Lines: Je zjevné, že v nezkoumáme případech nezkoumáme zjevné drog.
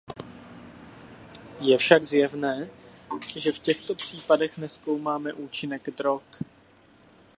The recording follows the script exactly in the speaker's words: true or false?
false